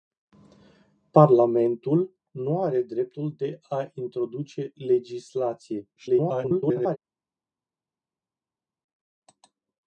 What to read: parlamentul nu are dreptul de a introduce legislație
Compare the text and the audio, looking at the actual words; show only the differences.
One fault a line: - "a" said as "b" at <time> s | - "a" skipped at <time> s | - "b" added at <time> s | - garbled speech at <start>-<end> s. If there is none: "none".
- garbled speech at 6.0-7.0 s